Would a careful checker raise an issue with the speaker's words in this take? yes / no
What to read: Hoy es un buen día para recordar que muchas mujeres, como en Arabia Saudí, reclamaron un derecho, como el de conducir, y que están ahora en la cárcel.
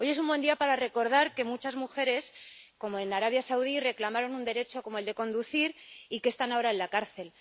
no